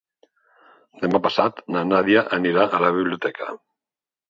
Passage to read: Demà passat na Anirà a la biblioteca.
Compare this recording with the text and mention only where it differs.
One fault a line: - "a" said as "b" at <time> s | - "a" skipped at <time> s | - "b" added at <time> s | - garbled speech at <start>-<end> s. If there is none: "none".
- "Nàdia" added at 1.9 s